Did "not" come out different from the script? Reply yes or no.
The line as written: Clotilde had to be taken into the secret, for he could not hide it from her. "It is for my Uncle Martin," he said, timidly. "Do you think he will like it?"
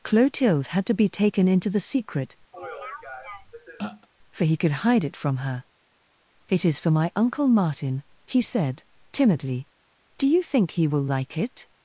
yes